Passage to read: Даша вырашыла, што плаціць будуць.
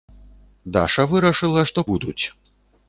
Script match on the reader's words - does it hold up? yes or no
no